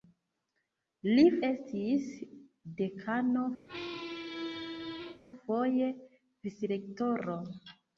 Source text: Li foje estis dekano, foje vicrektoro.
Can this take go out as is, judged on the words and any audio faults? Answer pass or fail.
fail